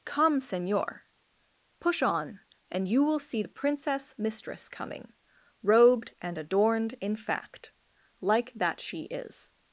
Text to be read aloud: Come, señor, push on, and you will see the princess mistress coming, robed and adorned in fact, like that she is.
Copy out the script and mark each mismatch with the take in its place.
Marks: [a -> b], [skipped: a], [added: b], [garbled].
Come, señor, push on, and you will see the princess mistress coming, robed and adorned in fact, like that she is.